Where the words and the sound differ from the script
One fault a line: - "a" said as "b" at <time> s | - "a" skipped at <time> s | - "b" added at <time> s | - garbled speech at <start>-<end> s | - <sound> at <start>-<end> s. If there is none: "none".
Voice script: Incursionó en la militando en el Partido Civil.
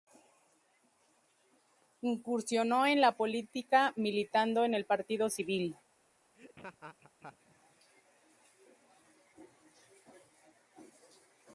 - "política" added at 3.1 s
- laugh at 6.3-7.4 s